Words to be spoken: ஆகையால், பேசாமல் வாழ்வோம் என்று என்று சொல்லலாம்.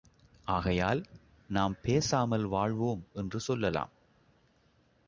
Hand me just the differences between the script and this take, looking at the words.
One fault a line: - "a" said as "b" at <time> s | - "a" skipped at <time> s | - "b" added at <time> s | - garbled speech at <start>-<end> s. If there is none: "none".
- "நாம்" added at 1.5 s
- "என்று" skipped at 3.4 s